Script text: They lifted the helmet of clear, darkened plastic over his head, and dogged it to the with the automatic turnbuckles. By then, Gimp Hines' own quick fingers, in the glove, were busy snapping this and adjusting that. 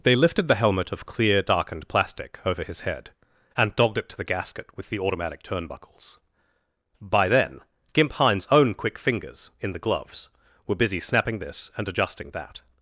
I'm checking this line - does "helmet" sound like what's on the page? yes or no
yes